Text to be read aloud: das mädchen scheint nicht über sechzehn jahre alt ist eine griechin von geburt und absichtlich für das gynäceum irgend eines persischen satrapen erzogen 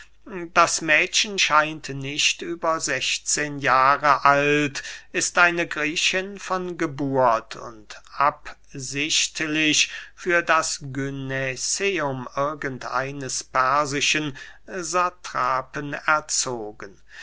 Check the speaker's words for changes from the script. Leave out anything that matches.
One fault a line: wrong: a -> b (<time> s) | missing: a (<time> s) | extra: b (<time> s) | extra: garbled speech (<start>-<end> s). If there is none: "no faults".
no faults